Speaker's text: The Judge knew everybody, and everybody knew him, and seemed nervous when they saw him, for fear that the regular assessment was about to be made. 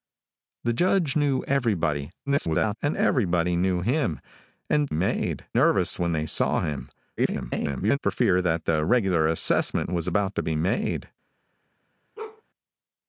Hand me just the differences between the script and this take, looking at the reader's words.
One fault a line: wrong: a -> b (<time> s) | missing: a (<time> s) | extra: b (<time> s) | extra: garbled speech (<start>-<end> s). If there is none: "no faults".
extra: garbled speech (2.3-2.8 s)
wrong: seemed -> made (4.9 s)
extra: garbled speech (7.2-8.0 s)